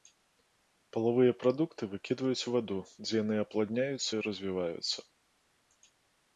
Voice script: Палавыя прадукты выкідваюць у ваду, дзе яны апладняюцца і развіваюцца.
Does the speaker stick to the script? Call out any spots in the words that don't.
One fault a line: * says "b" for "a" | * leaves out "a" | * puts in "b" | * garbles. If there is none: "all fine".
all fine